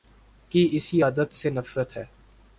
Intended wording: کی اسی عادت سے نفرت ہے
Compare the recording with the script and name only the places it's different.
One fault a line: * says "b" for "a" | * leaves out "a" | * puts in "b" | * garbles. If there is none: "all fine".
all fine